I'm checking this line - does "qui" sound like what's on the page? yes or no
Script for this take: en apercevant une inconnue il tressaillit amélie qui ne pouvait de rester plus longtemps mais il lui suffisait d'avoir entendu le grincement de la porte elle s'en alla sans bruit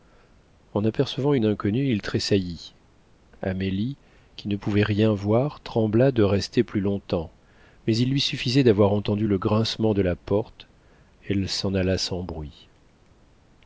yes